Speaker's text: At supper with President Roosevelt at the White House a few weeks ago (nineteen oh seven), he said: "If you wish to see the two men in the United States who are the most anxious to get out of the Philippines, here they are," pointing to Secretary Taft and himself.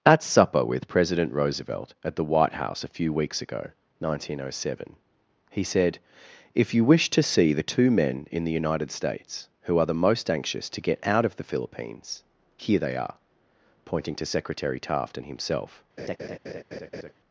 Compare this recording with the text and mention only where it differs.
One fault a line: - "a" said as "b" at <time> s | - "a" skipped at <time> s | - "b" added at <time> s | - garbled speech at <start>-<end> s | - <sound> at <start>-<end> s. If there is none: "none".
- laugh at 16.0-17.1 s